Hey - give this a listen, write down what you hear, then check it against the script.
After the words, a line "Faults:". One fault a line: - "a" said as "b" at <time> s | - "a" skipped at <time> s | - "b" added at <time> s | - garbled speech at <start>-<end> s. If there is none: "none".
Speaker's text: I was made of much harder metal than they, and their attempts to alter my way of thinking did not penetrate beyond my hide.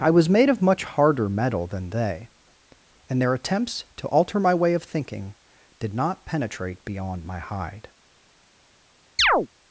I was made of much harder metal than they, and their attempts to alter my way of thinking did not penetrate beyond my hide.
Faults:
none